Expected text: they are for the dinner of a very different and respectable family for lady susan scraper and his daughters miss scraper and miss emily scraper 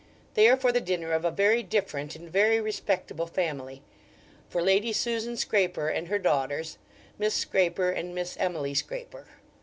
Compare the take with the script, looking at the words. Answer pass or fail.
fail